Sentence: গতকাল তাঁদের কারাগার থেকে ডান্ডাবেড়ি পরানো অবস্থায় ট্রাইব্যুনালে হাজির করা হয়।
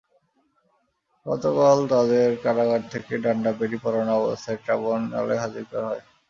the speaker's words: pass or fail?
pass